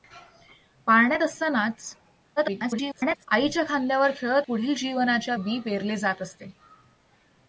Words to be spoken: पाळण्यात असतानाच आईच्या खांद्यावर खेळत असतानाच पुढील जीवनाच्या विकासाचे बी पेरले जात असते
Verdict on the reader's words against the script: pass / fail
fail